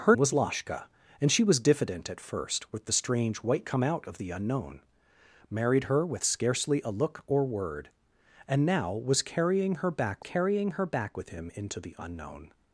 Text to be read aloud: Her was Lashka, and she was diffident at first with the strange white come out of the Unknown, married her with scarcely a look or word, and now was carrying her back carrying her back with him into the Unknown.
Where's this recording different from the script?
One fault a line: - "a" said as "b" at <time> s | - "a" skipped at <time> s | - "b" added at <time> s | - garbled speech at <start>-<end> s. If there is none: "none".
none